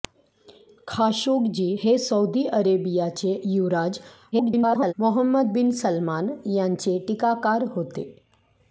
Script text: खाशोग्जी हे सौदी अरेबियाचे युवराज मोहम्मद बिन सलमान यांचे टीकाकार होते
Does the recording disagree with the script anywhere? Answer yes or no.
yes